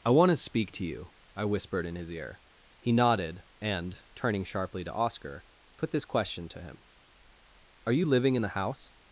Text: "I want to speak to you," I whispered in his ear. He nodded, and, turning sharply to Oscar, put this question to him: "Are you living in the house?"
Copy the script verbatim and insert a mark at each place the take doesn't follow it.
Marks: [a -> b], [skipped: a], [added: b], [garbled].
"I want to speak to you," I whispered in his ear. He nodded, and, turning sharply to Oscar, put this question to him: "Are you living in the house?"